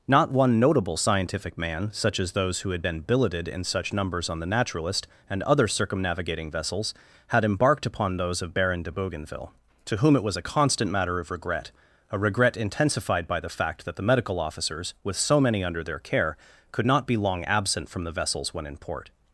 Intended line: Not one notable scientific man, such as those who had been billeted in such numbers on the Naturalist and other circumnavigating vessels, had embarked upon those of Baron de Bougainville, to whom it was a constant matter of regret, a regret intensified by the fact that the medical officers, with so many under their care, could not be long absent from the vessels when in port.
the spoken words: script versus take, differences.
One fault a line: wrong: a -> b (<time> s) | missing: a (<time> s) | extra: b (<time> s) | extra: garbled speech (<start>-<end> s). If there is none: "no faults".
no faults